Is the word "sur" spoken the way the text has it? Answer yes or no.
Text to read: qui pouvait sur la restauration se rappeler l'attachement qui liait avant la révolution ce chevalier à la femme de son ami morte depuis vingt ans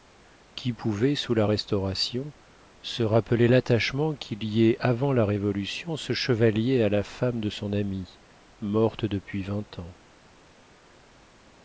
no